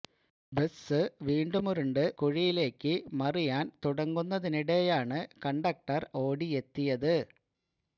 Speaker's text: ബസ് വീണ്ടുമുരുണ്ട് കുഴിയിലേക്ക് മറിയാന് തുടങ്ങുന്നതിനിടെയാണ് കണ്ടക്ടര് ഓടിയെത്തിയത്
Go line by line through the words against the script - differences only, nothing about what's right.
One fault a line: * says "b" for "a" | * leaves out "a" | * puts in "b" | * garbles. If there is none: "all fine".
all fine